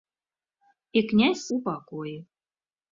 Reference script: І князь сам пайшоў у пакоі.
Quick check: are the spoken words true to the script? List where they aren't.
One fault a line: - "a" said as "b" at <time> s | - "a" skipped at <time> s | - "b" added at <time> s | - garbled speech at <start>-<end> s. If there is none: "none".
- "сам пайшоў" skipped at 1.4 s